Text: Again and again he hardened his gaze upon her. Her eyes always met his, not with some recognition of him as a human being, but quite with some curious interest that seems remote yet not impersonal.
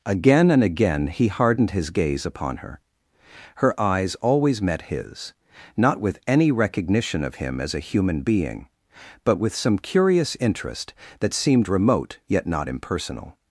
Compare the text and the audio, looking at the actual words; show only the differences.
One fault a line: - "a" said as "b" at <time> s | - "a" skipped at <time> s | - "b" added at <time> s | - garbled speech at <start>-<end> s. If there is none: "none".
- "some" said as "any" at 6.2 s
- "quite" skipped at 9.4 s
- "seems" said as "seemed" at 11.3 s